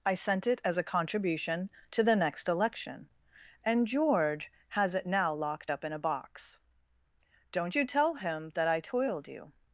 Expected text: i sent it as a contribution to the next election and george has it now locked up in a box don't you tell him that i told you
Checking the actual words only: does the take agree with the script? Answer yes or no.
no